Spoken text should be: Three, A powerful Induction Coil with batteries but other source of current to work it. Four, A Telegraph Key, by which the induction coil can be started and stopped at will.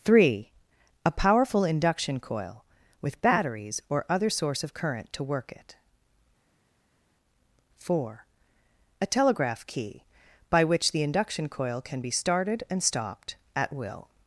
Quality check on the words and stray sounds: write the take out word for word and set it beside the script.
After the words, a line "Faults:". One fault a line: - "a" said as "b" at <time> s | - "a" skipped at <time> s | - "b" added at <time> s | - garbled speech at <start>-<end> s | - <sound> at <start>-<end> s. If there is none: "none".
Three, A powerful Induction Coil with batteries or other source of current to work it. Four, A Telegraph Key, by which the induction coil can be started and stopped at will.
Faults:
- "but" said as "or" at 3.9 s